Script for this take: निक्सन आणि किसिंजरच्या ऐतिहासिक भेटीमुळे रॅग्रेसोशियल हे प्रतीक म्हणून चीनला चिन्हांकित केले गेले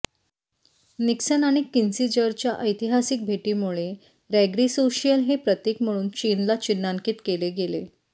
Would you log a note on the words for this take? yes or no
no